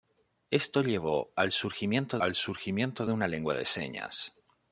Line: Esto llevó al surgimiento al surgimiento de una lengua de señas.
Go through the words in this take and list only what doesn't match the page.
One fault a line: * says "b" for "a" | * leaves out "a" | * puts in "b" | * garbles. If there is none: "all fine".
all fine